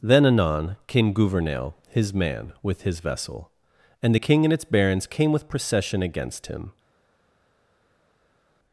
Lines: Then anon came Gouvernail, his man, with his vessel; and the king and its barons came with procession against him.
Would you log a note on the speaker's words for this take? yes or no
no